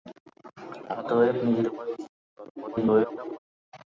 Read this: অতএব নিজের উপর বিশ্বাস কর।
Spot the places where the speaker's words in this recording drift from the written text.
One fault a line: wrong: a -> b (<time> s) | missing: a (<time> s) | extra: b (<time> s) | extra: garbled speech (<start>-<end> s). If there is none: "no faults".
extra: garbled speech (2.6-3.4 s)